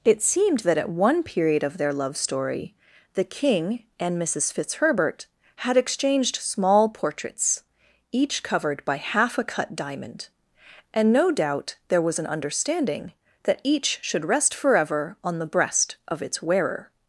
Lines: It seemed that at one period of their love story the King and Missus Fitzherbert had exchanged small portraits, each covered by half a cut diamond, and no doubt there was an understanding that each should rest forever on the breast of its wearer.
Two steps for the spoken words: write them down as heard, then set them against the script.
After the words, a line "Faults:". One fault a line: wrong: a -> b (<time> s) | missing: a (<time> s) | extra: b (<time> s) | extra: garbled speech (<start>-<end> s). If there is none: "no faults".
It seemed that at one period of their love story the King and Missus Fitzherbert had exchanged small portraits, each covered by half a cut diamond, and no doubt there was an understanding that each should rest forever on the breast of its wearer.
Faults:
no faults